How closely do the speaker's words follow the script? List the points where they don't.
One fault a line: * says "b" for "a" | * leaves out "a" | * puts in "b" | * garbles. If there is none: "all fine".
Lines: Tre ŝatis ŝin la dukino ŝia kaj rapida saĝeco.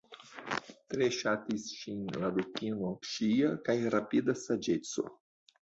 all fine